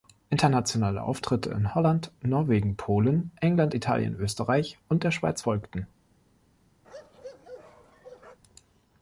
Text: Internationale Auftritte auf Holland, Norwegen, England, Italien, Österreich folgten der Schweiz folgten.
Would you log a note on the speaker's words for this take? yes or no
yes